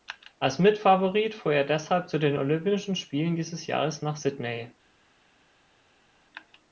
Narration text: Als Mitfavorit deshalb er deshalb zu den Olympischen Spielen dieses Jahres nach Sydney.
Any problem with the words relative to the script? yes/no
yes